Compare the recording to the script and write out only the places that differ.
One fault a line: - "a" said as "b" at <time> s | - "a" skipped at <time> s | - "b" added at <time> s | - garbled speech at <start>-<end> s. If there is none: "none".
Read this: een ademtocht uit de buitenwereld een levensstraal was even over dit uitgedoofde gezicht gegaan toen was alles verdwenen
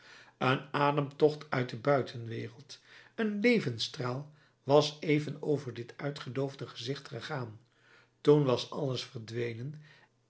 none